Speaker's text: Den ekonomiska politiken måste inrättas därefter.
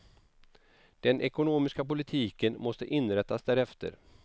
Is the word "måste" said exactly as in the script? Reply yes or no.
yes